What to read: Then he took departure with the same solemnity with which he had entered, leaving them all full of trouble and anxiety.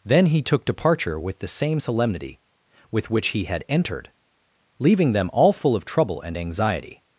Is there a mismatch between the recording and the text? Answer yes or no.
no